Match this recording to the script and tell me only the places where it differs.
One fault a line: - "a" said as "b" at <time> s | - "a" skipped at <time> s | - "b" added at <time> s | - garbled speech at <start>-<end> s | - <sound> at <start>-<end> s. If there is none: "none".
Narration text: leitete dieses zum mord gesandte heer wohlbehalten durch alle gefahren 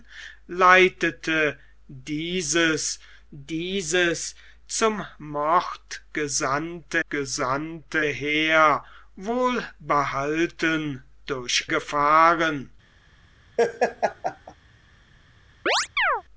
- "dieses" added at 3.3 s
- "gesandte" added at 7.1 s
- "alle" skipped at 11.7 s
- laugh at 13.6-14.6 s
- chirp at 15.7-16.2 s